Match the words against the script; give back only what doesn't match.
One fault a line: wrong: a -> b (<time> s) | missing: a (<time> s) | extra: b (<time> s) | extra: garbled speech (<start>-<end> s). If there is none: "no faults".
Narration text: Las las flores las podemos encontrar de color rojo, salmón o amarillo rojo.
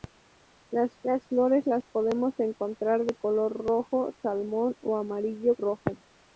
no faults